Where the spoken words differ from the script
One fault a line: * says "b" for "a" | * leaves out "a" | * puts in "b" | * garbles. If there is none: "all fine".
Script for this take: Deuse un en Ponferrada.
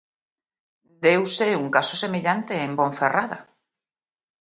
* puts in "caso semellante"